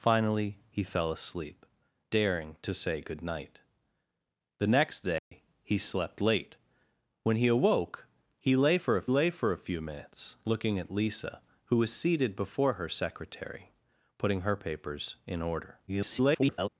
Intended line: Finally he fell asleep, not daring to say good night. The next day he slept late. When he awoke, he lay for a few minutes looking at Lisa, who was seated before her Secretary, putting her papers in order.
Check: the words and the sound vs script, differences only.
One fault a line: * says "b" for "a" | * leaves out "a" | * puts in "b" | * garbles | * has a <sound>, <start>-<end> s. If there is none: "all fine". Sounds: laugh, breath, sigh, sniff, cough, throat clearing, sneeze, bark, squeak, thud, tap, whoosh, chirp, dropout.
* leaves out "not"
* has a dropout, 5.2-5.3 s
* puts in "lay for a"
* garbles